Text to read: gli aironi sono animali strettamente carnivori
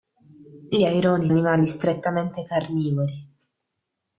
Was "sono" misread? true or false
true